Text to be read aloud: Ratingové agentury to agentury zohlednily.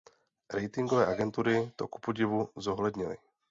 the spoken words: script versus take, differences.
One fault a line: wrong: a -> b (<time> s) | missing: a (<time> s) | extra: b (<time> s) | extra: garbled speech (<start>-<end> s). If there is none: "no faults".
wrong: agentury -> kupodivu (1.9 s)